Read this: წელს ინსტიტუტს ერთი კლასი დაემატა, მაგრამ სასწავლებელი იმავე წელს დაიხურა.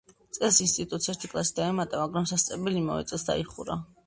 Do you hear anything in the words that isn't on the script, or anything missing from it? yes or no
no